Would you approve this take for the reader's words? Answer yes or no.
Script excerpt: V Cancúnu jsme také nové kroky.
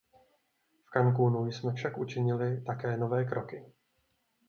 no